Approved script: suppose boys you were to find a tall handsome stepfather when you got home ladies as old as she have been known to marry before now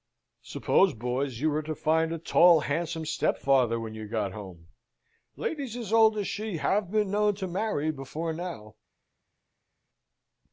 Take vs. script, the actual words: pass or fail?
pass